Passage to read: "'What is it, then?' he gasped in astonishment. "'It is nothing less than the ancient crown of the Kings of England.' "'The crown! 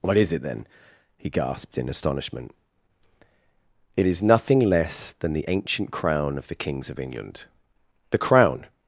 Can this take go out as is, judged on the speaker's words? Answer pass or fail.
pass